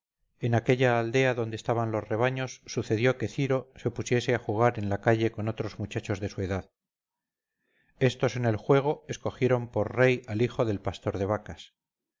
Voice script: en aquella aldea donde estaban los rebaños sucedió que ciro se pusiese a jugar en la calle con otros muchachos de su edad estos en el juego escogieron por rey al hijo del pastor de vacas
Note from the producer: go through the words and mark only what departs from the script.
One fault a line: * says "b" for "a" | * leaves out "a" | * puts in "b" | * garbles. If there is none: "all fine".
all fine